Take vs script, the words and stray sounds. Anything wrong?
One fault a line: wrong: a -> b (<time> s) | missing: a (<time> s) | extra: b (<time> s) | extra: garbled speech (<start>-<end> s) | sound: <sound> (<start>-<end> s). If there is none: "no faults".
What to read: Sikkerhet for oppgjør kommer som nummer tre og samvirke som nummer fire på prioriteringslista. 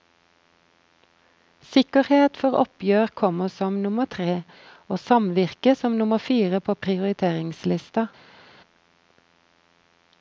no faults